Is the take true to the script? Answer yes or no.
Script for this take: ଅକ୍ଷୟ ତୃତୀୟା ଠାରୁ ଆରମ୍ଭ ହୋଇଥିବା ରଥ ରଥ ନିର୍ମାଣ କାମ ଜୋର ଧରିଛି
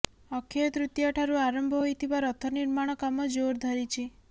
no